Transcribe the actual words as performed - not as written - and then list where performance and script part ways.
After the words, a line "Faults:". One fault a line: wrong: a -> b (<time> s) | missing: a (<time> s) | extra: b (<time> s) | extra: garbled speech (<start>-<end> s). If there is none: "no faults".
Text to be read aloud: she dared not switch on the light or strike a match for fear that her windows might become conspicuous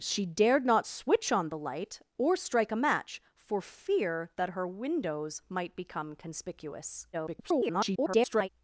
she dared not switch on the light or strike a match for fear that her windows might become conspicuous [garbled]
Faults:
extra: garbled speech (7.1-8.5 s)